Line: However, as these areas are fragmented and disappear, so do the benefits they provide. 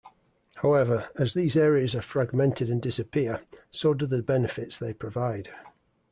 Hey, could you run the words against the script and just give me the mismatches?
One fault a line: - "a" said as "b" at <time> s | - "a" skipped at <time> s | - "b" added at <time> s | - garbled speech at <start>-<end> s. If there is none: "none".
none